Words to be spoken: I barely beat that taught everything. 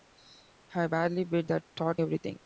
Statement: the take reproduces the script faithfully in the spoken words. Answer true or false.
true